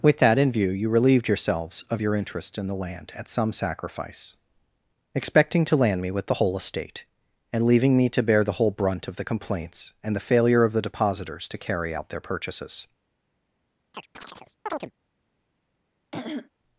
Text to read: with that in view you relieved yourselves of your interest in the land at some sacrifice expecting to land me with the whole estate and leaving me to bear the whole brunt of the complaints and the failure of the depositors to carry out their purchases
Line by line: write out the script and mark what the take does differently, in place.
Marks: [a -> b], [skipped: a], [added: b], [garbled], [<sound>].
with that in view you relieved yourselves of your interest in the land at some sacrifice expecting to land me with the whole estate and leaving me to bear the whole brunt of the complaints and the failure of the depositors to carry out their purchases [chirp] [throat clearing]